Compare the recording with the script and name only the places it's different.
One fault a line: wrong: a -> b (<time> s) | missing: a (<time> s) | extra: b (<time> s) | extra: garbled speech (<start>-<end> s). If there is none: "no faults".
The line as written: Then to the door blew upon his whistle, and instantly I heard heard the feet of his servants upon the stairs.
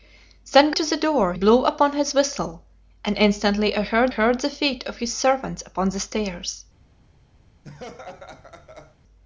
no faults